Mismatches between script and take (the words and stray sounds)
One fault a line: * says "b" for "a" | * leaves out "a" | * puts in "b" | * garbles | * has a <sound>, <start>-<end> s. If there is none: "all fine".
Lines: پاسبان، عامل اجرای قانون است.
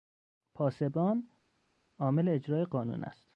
all fine